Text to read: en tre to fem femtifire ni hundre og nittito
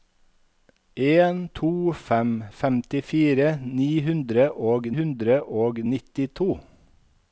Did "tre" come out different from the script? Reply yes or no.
yes